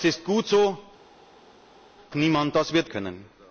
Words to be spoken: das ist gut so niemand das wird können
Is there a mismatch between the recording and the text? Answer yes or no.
no